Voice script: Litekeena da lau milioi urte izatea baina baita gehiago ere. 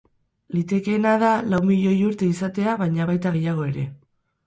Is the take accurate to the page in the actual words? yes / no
yes